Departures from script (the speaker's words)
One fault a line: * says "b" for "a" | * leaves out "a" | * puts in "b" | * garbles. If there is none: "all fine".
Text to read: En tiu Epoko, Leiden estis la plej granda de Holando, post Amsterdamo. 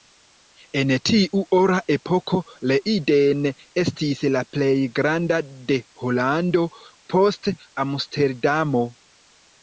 * puts in "Ora"